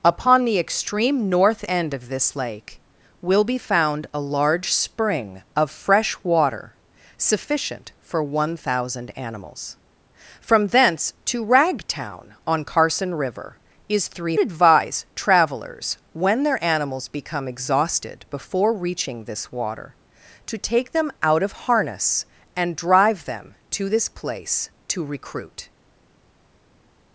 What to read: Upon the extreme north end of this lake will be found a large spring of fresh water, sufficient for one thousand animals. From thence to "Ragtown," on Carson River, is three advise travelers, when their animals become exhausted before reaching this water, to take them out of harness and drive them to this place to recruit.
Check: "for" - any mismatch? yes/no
no